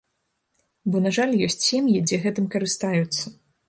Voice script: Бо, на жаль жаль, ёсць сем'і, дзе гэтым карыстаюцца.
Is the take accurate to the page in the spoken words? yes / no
no